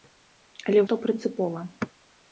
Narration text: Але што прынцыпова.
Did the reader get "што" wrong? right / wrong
right